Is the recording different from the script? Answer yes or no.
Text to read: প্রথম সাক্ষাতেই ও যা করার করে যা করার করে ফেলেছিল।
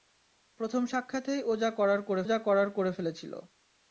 no